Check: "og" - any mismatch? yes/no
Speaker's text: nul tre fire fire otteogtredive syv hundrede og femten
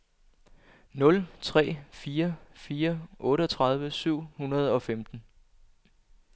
no